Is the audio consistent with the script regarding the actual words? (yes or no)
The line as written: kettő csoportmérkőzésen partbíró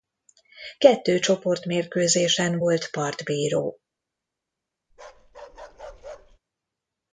no